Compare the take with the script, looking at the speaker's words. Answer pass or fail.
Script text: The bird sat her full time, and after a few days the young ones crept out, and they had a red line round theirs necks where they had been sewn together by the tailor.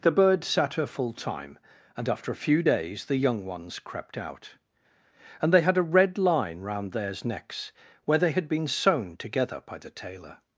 pass